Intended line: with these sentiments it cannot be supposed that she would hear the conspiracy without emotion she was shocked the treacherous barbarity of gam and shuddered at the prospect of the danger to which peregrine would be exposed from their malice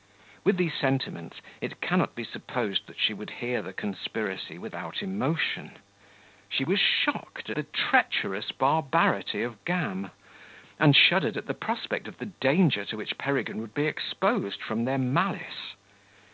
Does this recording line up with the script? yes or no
yes